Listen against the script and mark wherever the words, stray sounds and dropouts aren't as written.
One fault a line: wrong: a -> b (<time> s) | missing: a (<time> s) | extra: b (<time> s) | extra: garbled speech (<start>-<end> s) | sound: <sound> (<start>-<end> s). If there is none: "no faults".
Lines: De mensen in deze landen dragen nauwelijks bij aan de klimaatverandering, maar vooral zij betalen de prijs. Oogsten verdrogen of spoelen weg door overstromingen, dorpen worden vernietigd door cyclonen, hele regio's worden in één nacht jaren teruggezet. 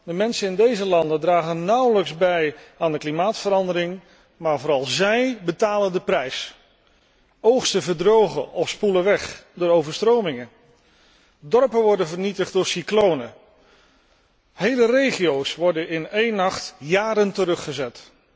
no faults